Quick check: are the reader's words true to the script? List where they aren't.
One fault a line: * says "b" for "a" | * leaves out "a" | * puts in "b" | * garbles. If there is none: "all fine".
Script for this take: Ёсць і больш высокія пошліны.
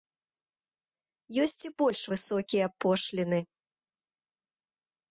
all fine